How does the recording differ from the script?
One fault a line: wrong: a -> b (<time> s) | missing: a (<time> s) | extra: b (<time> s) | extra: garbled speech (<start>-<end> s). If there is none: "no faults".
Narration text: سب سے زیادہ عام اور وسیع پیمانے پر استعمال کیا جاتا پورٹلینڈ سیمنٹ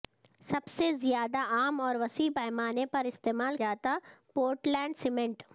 missing: کیا (3.6 s)